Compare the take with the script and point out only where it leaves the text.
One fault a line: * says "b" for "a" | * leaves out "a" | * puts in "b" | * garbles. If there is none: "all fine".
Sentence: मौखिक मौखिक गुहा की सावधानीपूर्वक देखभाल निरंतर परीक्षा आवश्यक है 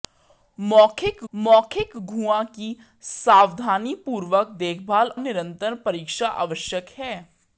all fine